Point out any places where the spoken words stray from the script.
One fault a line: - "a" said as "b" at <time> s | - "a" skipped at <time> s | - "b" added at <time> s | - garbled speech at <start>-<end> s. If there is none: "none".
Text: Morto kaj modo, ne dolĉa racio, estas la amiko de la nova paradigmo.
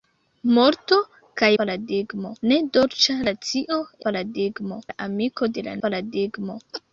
- "modo" said as "paradigmo" at 1.6 s
- "estas" said as "paradigmo" at 4.1 s
- "nova" skipped at 5.8 s